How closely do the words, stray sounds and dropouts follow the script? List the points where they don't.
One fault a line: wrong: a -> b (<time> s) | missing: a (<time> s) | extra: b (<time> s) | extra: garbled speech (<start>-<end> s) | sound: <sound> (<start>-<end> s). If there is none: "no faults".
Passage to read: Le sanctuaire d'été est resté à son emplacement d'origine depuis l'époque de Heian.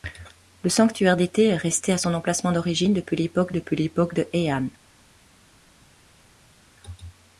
extra: depuis l'époque (3.5 s)